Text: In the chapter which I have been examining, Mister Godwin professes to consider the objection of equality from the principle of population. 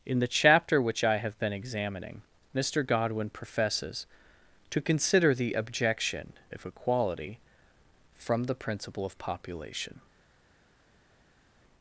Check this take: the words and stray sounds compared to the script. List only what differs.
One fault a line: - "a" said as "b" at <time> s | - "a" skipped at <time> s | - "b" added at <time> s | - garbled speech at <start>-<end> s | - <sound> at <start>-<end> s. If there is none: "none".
none